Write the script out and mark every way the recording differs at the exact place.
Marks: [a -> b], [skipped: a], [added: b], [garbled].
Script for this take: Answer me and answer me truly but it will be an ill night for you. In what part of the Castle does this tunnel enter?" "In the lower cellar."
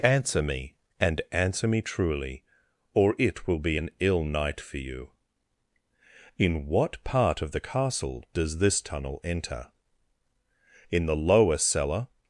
Answer me and answer me truly [but -> or] it will be an ill night for you. In what part of the Castle does this tunnel enter?" "In the lower cellar."